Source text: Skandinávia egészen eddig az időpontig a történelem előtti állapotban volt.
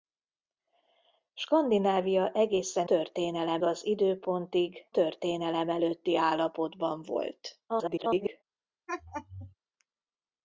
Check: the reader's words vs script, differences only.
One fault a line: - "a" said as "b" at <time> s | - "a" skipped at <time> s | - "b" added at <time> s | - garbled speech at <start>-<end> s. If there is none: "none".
- "eddig" said as "történelem" at 2.8 s
- "a" skipped at 4.9 s
- garbled speech at 7.7-8.4 s